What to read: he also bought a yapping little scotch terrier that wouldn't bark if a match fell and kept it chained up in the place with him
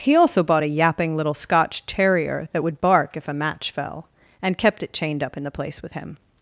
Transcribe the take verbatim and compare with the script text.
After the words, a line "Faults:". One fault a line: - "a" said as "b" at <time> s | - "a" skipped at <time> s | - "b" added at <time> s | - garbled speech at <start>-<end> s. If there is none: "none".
he also bought a yapping little scotch terrier that would bark if a match fell and kept it chained up in the place with him
Faults:
- "wouldn't" said as "would" at 2.6 s